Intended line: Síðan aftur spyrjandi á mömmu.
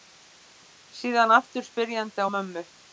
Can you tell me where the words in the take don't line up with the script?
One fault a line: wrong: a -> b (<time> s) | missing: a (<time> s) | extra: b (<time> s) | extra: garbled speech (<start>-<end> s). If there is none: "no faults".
no faults